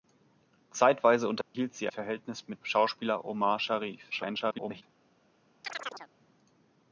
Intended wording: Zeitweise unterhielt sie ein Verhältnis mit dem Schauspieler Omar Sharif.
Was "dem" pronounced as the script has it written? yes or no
no